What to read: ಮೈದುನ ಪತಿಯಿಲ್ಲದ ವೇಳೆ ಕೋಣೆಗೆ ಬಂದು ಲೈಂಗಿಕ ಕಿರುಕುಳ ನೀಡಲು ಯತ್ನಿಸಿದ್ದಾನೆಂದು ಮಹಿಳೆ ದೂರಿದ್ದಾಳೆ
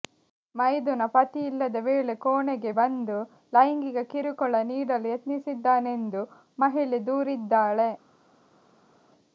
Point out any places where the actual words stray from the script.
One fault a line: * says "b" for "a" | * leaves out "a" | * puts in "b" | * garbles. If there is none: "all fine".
all fine